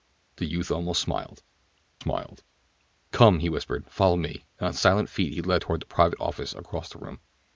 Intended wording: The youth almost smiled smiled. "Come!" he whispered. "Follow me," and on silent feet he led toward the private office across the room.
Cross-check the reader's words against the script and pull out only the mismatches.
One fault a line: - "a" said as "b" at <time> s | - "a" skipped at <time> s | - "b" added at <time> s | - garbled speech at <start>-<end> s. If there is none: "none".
none